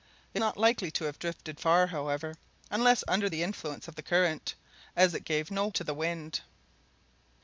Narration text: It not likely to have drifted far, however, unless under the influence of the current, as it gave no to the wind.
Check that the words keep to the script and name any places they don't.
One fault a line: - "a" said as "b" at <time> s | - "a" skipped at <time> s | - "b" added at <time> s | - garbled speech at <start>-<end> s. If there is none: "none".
none